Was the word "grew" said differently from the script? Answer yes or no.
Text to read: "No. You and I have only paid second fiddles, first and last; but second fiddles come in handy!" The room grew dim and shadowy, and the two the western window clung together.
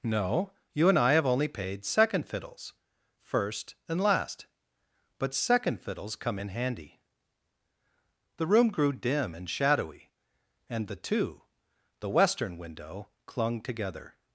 no